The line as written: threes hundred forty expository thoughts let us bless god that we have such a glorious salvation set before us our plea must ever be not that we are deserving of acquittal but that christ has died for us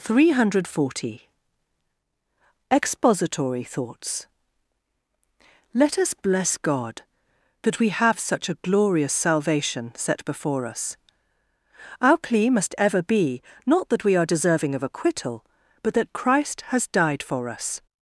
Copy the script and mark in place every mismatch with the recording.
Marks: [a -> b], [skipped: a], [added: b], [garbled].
[threes -> three] hundred forty expository thoughts let us bless god that we have such a glorious salvation set before us our plea must ever be not that we are deserving of acquittal but that christ has died for us